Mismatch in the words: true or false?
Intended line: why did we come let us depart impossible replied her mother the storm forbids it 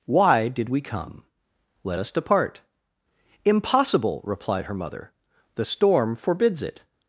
false